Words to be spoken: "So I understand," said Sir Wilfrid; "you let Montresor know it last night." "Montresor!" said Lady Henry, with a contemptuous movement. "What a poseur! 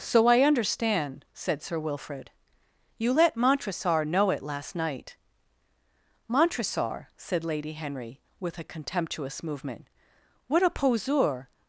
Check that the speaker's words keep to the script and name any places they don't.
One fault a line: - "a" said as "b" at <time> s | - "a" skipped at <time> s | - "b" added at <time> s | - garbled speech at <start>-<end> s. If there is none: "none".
none